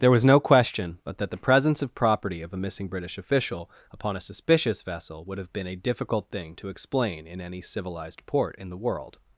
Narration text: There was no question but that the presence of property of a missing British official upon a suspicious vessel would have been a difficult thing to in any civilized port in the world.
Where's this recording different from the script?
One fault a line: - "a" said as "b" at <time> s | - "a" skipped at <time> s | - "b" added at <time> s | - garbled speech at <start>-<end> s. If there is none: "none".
- "explain" added at 6.7 s